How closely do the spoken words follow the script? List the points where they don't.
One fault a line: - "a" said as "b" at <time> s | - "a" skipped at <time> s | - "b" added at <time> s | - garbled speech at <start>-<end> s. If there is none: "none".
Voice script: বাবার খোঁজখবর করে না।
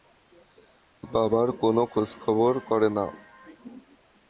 - "কোনো" added at 1.6 s